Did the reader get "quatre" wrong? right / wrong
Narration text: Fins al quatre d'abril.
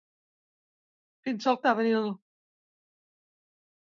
wrong